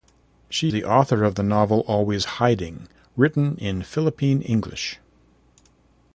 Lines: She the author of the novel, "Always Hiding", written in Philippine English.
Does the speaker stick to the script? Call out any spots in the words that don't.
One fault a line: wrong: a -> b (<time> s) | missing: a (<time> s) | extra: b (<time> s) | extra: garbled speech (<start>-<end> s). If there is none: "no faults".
no faults